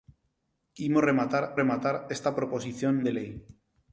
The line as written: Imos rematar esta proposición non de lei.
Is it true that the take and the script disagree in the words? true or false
true